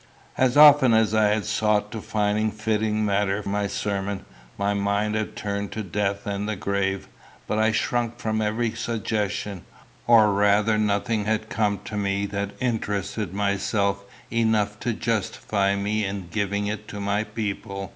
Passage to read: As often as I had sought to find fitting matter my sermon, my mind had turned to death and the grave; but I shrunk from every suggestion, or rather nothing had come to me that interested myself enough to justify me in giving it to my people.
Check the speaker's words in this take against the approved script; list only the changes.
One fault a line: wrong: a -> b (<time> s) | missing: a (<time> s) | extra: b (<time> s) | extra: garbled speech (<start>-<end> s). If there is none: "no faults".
no faults